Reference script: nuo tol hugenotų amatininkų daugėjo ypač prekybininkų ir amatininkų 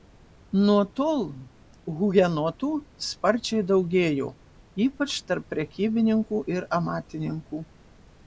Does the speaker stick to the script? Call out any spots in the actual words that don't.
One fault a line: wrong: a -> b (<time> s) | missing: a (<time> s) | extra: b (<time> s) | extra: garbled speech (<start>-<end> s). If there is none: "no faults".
wrong: amatininkų -> sparčiai (3.1 s)
extra: tarp (5.3 s)